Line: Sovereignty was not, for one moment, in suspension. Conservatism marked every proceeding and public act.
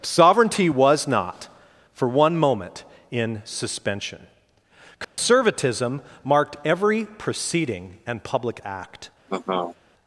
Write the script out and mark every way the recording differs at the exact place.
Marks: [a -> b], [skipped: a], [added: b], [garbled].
Sovereignty was not, for one moment, in suspension. Conservatism marked every proceeding and public act.